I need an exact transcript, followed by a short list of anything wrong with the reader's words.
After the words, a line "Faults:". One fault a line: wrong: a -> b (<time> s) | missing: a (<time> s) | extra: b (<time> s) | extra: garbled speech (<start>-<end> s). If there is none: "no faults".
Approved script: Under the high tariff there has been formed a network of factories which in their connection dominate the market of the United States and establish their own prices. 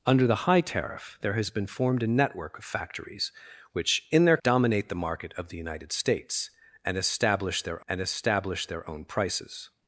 Under the high tariff there has been formed a network of factories which in their dominate the market of the United States and establish their and establish their own prices.
Faults:
missing: connection (4.4 s)
extra: and establish their (7.9 s)